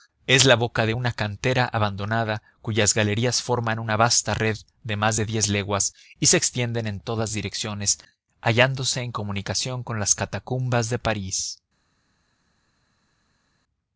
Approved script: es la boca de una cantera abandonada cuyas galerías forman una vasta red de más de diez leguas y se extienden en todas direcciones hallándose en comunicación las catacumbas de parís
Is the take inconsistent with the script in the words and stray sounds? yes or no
yes